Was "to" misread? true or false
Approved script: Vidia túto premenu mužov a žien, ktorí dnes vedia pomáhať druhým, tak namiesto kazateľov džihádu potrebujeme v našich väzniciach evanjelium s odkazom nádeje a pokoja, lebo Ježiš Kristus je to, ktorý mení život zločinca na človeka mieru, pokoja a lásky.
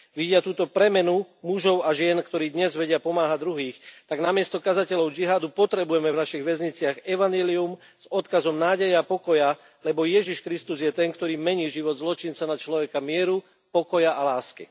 true